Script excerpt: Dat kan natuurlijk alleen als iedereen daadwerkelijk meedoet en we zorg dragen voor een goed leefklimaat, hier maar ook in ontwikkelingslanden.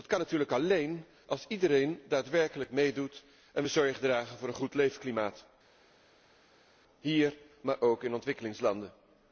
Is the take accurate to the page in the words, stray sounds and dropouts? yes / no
yes